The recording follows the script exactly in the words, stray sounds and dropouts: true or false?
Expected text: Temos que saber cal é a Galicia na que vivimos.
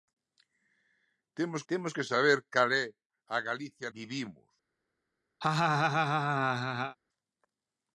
false